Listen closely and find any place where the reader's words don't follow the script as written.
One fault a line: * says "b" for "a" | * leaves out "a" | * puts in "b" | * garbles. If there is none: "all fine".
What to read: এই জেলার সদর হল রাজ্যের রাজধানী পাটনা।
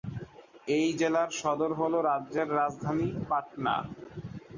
all fine